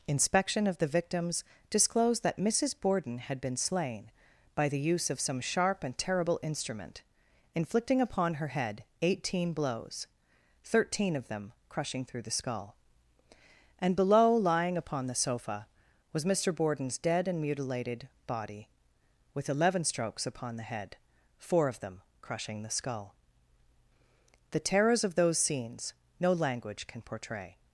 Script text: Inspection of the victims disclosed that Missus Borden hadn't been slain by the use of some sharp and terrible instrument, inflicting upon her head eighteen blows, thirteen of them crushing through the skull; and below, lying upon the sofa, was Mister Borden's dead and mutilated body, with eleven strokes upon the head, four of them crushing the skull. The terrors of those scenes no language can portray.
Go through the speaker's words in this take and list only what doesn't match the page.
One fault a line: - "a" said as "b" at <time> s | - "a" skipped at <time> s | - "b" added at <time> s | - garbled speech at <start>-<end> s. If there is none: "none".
- "hadn't" said as "had" at 3.2 s